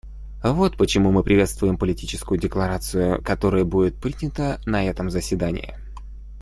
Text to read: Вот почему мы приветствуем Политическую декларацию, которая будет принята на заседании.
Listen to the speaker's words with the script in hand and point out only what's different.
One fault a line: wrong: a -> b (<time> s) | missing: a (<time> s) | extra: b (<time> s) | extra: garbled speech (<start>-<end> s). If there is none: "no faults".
extra: этом (4.8 s)